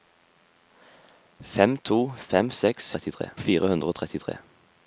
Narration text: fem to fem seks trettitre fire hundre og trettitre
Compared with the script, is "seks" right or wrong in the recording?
right